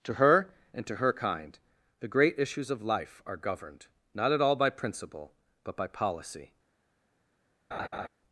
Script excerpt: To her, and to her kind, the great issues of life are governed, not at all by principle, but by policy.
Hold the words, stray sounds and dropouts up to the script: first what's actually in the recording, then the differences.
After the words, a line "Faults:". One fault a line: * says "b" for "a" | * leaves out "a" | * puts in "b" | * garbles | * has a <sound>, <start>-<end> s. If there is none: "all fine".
To her, and to her kind, the great issues of life are governed, not at all by principle, but by policy.
Faults:
* has a laugh, 7.7-8.1 s